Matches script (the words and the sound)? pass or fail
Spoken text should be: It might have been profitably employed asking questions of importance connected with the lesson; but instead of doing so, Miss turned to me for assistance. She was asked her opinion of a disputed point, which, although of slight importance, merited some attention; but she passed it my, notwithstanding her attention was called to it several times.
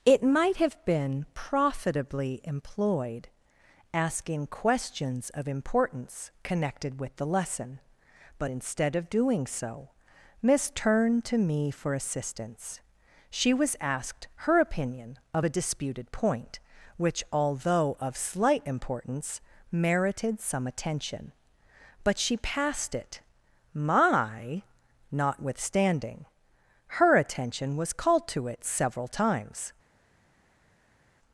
pass